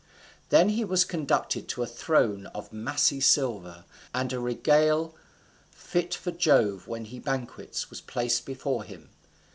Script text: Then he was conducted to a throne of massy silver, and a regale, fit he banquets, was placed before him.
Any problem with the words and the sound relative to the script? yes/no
yes